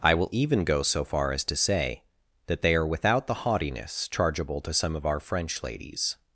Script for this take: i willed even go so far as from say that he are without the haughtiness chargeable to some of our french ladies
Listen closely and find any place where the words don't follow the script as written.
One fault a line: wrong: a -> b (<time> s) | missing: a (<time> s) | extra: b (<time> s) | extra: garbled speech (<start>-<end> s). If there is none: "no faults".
wrong: willed -> will (0.1 s)
wrong: from -> to (1.4 s)
wrong: he -> they (2.6 s)